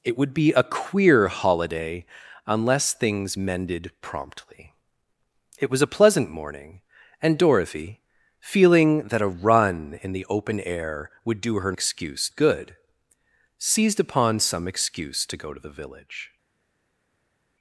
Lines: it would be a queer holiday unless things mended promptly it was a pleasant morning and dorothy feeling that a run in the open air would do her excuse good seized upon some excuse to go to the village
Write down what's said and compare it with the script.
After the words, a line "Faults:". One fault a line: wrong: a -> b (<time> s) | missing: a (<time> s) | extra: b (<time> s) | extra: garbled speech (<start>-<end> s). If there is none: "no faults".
it would be a queer holiday unless things mended promptly it was a pleasant morning and dorothy feeling that a run in the open air would do her excuse good seized upon some excuse to go to the village
Faults:
no faults